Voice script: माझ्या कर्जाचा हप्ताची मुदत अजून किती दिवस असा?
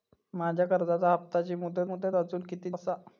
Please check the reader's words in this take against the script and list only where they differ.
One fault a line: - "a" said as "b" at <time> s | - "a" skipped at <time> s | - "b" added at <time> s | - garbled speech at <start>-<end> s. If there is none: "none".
- "मुदत" added at 1.8 s
- "दिवस" skipped at 2.7 s